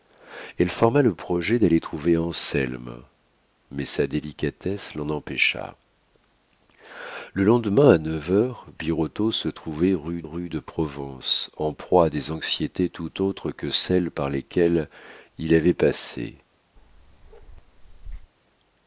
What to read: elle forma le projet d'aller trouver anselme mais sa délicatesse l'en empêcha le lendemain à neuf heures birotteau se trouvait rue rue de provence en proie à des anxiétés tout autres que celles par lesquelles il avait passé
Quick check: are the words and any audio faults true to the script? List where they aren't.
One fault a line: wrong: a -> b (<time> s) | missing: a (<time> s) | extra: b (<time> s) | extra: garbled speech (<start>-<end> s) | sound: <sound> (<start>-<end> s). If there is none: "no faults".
sound: bark (16.8-18.3 s)